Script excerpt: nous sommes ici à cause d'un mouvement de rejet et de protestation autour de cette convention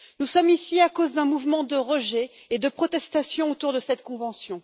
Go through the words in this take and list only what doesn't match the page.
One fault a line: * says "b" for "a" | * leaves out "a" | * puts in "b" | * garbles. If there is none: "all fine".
all fine